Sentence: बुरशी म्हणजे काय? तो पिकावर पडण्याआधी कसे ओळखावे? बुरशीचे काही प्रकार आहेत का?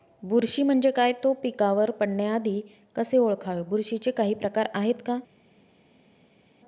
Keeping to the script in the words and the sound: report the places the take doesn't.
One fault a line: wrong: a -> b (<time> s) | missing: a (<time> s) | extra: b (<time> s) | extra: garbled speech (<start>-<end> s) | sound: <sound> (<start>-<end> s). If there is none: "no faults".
no faults